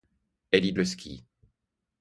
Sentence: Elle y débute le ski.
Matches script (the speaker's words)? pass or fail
fail